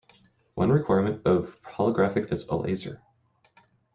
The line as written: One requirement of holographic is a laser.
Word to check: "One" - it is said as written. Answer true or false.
true